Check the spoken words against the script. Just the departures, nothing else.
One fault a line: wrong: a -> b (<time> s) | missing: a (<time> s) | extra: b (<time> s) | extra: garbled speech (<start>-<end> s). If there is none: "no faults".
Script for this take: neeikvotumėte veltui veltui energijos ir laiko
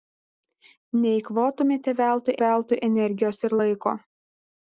no faults